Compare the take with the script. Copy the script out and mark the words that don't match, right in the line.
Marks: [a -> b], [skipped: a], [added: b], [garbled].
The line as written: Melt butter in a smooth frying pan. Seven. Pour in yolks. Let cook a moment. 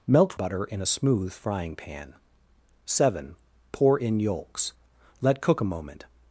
Melt butter in a smooth frying pan. Seven. Pour in yolks. Let cook a moment.